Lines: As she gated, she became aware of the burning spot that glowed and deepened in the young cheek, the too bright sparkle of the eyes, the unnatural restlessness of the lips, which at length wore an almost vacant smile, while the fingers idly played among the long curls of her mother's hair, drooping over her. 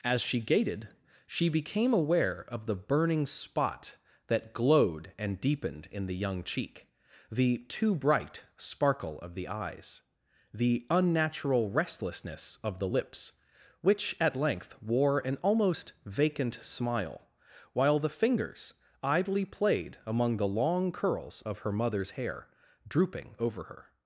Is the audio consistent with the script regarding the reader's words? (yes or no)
yes